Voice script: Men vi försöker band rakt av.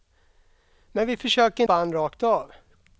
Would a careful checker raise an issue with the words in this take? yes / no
no